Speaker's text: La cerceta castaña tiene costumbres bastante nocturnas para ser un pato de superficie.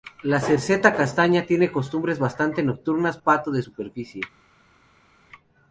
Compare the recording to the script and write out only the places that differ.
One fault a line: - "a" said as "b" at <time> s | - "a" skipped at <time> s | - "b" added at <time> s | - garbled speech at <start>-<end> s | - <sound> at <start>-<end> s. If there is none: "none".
- "para ser un" skipped at 3.2 s